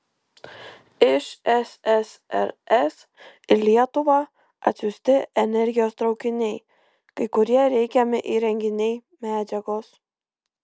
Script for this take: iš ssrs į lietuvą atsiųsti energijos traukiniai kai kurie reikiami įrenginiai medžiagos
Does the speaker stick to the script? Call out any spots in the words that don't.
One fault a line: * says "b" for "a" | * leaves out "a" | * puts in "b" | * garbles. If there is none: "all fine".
all fine